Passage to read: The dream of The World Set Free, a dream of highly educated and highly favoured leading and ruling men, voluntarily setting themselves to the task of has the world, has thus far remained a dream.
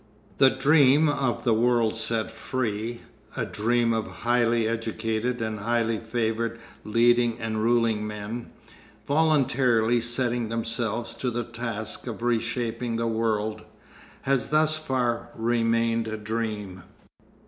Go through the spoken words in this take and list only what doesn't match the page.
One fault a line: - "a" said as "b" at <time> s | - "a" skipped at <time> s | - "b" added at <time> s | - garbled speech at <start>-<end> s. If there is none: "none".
- "has" said as "reshaping" at 12.2 s